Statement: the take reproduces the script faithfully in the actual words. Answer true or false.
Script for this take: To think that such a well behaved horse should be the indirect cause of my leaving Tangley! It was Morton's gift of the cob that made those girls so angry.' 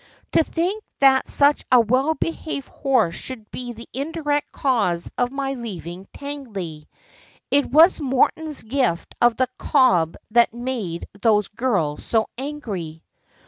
true